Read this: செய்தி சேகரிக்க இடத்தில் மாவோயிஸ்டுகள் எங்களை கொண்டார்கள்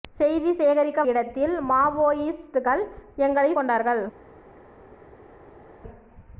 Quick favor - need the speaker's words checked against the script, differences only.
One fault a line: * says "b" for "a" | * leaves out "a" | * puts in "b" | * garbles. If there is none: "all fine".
all fine